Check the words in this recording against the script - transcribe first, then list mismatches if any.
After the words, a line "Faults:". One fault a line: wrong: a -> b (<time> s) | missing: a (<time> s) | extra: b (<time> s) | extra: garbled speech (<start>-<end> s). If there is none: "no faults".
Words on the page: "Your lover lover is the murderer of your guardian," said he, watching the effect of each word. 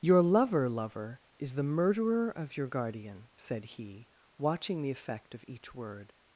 "Your lover lover is the murderer of your guardian," said he, watching the effect of each word.
Faults:
no faults